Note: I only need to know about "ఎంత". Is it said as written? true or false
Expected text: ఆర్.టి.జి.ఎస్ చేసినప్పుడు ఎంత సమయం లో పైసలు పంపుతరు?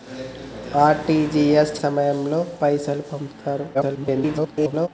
false